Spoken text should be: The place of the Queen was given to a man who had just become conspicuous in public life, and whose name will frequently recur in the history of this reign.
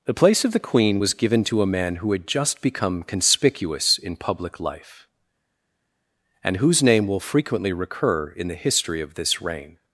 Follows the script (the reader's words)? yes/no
yes